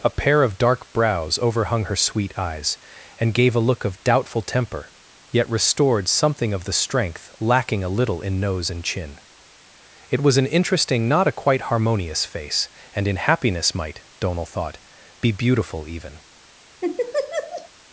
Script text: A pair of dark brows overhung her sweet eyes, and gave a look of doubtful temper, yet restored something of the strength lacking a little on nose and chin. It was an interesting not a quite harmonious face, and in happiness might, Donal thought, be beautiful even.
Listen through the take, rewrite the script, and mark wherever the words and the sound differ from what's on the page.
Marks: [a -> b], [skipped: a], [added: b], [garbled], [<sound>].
A pair of dark brows overhung her sweet eyes, and gave a look of doubtful temper, yet restored something of the strength lacking a little [on -> in] nose and chin. It was an interesting not a quite harmonious face, and in happiness might, Donal thought, be beautiful even. [laugh]